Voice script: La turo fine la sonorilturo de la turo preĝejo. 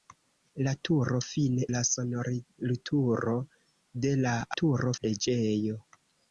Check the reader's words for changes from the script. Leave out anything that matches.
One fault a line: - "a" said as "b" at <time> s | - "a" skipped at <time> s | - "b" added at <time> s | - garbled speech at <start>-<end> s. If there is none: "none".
none